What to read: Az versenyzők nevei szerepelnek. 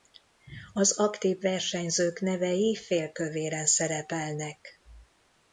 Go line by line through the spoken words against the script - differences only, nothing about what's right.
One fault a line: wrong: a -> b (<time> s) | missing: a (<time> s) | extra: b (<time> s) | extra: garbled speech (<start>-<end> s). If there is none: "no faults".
extra: aktív (1.0 s)
extra: félkövéren (2.8 s)